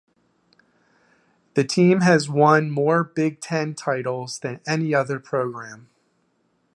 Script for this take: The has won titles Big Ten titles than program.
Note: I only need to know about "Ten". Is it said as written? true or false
true